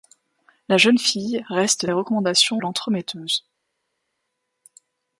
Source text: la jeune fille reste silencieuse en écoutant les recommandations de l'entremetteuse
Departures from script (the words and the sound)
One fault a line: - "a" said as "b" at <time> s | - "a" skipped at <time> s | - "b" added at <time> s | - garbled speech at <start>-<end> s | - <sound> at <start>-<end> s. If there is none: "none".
- "silencieuse en écoutant" skipped at 1.9 s
- "de" skipped at 2.6 s